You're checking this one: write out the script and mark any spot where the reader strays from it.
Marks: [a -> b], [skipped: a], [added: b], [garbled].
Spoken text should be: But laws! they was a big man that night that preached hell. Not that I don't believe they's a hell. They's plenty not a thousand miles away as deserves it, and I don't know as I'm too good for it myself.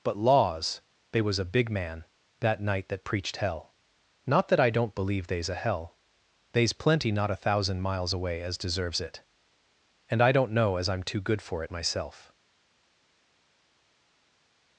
But laws! they was a big man that night that preached hell. Not that I don't believe they's a hell. They's plenty not a thousand miles away as deserves it, and I don't know as I'm too good for it myself.